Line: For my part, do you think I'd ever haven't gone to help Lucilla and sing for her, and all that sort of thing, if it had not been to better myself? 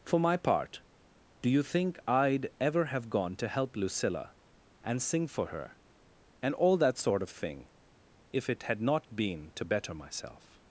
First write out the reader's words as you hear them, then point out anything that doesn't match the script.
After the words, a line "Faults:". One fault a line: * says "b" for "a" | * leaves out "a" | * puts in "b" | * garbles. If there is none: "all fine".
For my part, do you think I'd ever have gone to help Lucilla and sing for her, and all that sort of thing, if it had not been to better myself?
Faults:
* says "have" for "haven't"